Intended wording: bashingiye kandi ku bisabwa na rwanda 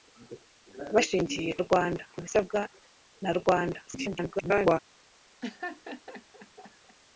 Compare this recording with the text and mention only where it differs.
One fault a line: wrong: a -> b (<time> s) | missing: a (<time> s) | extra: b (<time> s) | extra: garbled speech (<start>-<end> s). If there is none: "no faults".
wrong: kandi -> rwanda (1.6 s)
extra: garbled speech (3.9-4.8 s)